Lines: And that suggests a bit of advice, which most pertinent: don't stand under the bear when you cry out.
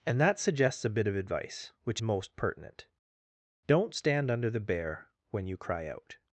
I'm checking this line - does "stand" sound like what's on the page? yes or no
yes